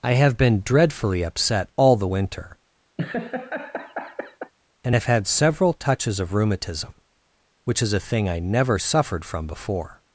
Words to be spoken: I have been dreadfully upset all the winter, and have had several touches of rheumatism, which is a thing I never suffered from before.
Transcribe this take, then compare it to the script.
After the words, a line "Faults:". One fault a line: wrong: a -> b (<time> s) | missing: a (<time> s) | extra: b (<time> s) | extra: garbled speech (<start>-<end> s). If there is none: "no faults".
I have been dreadfully upset all the winter, and have had several touches of rheumatism, which is a thing I never suffered from before.
Faults:
no faults